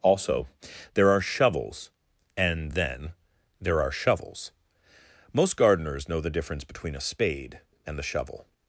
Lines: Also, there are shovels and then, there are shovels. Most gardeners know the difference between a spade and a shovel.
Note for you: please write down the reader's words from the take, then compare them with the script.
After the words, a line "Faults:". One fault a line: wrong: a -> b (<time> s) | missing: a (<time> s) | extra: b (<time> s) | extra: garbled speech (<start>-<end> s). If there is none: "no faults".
Also, there are shovels and then, there are shovels. Most gardeners know the difference between a spade and the shovel.
Faults:
wrong: a -> the (8.0 s)